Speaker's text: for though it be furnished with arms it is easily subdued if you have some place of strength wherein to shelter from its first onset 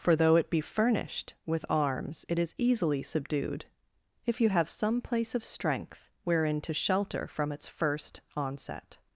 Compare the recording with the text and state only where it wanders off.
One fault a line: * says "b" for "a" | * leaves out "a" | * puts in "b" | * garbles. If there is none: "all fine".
all fine